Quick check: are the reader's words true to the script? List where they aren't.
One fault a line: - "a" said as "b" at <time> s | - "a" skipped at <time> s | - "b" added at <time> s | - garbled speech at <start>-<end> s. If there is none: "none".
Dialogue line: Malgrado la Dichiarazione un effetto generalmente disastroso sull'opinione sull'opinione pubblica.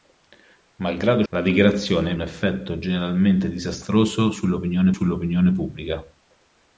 none